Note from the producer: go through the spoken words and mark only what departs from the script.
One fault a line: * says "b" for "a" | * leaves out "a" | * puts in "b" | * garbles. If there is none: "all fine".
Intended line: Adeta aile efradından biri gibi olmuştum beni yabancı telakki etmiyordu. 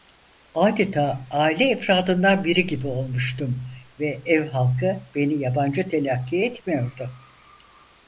* puts in "ve ev halkı"